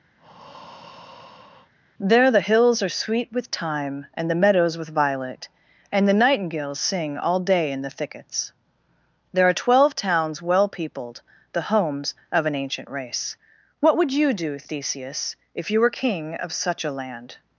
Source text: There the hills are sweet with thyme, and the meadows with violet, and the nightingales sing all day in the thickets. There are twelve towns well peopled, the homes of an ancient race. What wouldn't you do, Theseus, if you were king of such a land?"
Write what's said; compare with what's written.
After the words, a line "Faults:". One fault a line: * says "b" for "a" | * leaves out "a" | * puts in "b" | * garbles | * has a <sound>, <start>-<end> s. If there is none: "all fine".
There the hills are sweet with thyme, and the meadows with violet, and the nightingales sing all day in the thickets. There are twelve towns well peopled, the homes of an ancient race. What would you do, Theseus, if you were king of such a land?"
Faults:
* has a breath, 0.2-1.7 s
* says "would" for "wouldn't"